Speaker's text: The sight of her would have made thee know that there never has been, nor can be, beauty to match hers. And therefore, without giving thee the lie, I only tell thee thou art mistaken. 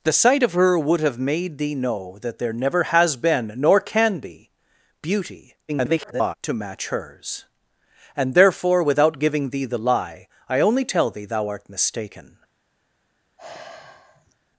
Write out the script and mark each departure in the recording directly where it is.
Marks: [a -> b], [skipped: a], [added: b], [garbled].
The sight of her would have made thee know that there never has been, nor can be, beauty [garbled] to match hers. And therefore, without giving thee the lie, I only tell thee thou art mistaken.